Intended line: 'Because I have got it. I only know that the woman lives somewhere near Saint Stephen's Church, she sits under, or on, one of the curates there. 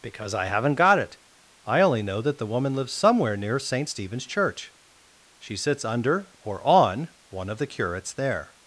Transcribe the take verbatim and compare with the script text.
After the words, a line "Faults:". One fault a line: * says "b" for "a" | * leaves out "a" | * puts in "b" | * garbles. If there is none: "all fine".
'Because I haven't got it. I only know that the woman lives somewhere near Saint Stephen's Church, she sits under, or on, one of the curates there.
Faults:
* says "haven't" for "have"